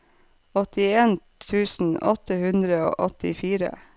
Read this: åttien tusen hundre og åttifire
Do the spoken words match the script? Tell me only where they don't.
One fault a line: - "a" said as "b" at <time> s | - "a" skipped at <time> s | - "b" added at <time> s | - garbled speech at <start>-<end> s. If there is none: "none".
- "åtte" added at 2.1 s